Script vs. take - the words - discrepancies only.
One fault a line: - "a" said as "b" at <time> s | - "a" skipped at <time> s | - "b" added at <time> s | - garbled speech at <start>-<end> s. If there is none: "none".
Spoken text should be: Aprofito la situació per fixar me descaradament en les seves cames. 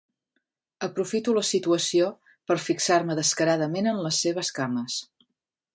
none